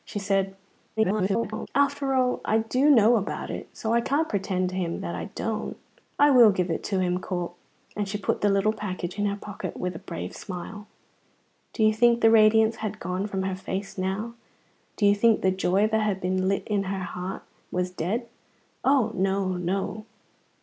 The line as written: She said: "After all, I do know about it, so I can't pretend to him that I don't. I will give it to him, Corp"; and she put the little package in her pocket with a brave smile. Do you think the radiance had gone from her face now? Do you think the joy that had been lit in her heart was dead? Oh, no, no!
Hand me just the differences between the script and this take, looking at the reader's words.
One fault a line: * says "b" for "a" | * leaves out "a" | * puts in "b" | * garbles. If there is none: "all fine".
* garbles